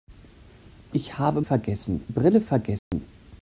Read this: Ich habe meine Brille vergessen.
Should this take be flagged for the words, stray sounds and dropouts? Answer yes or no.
yes